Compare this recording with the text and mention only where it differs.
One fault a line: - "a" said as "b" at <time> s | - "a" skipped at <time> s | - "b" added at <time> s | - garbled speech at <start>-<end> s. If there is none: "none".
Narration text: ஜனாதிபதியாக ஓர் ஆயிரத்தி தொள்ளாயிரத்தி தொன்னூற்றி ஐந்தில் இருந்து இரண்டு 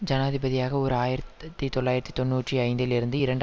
none